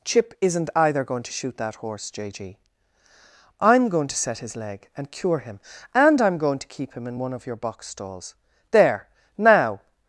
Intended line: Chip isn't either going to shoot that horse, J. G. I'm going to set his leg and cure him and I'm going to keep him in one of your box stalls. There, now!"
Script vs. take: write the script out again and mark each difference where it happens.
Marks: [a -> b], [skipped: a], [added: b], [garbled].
Chip isn't either going to shoot that horse, J. G. I'm going to set his leg and cure him and I'm going to keep him in one of your box stalls. There, now!"